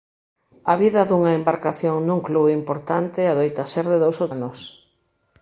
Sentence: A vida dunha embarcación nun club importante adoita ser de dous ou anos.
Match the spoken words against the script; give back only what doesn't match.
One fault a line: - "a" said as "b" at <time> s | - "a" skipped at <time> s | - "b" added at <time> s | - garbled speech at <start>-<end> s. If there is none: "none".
none